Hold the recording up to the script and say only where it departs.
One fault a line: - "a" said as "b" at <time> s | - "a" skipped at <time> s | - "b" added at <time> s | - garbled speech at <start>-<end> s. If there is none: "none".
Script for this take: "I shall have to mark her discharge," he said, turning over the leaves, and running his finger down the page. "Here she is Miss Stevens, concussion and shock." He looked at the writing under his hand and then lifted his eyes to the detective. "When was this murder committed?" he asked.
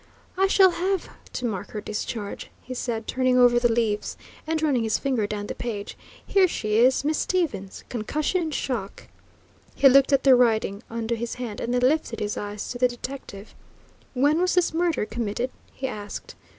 none